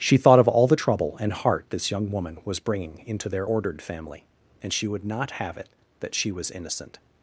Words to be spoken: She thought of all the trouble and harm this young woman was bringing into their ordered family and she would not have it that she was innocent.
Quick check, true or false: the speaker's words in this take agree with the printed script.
false